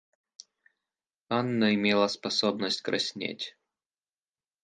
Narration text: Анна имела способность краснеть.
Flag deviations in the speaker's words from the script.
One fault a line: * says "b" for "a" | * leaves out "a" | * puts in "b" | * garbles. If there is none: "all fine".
all fine